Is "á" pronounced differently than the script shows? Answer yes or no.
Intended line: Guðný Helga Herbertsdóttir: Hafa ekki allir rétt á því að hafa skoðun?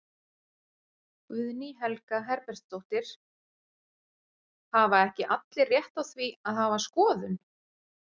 no